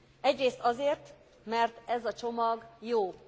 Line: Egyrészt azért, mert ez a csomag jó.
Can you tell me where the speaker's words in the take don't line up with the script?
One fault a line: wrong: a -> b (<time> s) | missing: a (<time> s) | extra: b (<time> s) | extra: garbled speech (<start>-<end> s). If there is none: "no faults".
no faults